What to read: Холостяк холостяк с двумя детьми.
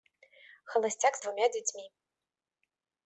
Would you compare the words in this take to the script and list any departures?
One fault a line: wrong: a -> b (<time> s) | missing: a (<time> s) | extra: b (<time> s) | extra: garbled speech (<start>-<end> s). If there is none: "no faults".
missing: холостяк (1.1 s)